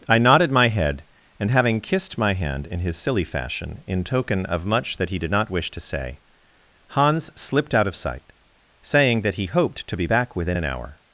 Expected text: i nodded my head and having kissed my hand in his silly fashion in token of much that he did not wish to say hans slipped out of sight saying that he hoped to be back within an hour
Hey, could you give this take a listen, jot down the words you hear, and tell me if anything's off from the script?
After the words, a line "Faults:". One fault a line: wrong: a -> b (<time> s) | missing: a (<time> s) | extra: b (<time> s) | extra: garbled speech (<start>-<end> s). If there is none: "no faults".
i nodded my head and having kissed my hand in his silly fashion in token of much that he did not wish to say hans slipped out of sight saying that he hoped to be back within an hour
Faults:
no faults